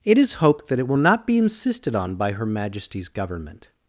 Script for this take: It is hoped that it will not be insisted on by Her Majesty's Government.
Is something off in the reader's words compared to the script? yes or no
no